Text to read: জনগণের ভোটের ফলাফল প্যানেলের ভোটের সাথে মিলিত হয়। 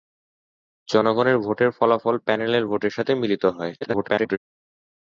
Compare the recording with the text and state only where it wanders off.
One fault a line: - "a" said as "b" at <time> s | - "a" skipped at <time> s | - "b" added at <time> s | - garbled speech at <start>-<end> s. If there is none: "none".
- garbled speech at 3.8-4.4 s